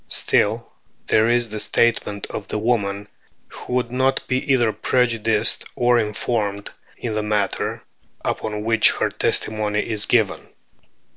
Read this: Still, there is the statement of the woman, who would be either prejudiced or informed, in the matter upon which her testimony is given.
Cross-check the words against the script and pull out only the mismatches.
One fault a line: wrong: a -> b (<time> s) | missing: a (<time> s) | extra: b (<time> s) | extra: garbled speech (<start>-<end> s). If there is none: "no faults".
extra: not (3.9 s)